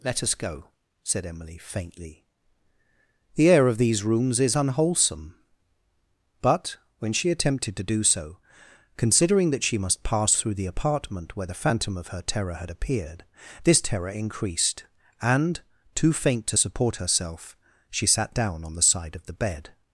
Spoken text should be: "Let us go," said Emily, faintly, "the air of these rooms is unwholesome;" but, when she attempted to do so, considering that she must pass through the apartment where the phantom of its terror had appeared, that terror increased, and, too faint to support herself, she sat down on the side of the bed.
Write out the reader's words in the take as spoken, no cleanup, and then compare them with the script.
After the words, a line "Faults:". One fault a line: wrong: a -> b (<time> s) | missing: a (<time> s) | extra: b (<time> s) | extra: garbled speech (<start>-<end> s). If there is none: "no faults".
"Let us go," said Emily, faintly, "the air of these rooms is unwholesome;" but, when she attempted to do so, considering that she must pass through the apartment where the phantom of her terror had appeared, this terror increased, and, too faint to support herself, she sat down on the side of the bed.
Faults:
wrong: its -> her (12.1 s)
wrong: that -> this (13.6 s)